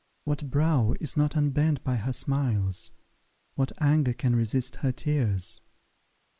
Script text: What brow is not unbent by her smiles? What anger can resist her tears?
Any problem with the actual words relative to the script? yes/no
no